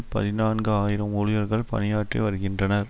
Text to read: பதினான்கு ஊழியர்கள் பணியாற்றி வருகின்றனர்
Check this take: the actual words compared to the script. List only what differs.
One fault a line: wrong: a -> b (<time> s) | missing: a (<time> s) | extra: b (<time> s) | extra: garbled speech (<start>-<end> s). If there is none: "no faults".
extra: ஆயிரம் (0.7 s)